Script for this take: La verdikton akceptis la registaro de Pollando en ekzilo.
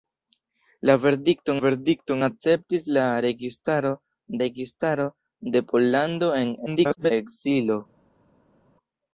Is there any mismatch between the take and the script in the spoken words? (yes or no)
yes